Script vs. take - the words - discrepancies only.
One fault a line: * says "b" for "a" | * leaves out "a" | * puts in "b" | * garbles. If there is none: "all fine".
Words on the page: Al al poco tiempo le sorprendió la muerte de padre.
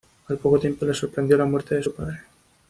* leaves out "al"
* puts in "su"